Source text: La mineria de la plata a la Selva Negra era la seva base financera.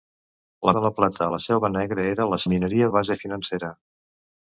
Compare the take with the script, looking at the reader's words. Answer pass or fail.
fail